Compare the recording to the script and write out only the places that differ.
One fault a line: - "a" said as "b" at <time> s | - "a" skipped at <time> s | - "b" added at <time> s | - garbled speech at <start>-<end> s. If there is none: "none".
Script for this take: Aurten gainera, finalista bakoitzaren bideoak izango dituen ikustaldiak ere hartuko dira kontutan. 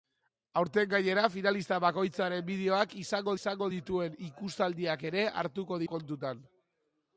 - "izango" added at 3.4 s
- "dira" skipped at 5.8 s